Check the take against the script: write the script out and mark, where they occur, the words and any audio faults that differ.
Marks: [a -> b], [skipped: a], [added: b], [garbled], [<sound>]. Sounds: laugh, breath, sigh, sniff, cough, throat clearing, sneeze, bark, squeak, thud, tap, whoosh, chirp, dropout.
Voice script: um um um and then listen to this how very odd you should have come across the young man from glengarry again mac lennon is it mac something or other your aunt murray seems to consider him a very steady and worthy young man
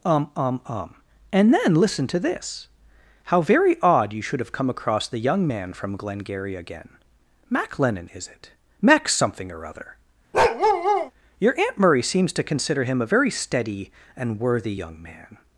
um um um and then listen to this how very odd you should have come across the young man from glengarry again mac lennon is it mac something or other [bark] your aunt murray seems to consider him a very steady and worthy young man